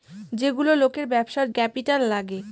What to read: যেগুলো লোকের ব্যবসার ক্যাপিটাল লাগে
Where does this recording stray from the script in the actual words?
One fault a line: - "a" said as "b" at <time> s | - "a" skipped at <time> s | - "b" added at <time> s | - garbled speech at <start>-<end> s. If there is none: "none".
none